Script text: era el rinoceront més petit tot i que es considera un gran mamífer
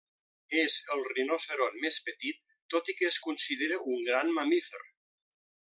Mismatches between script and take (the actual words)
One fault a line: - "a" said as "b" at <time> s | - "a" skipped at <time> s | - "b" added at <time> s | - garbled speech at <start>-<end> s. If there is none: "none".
- "era" said as "és" at 0.6 s